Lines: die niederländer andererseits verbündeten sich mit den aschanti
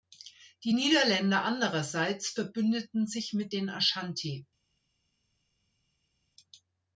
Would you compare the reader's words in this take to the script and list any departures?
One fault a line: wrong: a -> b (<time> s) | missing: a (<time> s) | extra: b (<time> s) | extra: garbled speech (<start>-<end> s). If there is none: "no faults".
no faults